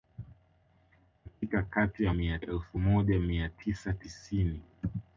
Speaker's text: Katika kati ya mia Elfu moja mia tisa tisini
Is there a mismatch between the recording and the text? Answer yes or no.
no